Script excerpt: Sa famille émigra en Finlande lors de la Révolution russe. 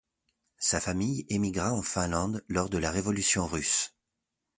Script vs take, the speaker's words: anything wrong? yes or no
no